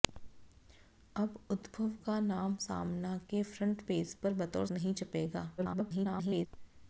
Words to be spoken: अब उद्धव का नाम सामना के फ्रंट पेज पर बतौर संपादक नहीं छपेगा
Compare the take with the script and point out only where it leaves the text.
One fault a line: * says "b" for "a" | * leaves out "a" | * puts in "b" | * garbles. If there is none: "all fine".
* leaves out "संपादक"
* garbles